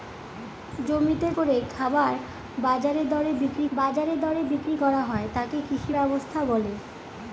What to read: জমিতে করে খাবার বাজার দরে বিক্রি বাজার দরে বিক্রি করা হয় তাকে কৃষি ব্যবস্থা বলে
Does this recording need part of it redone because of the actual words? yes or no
no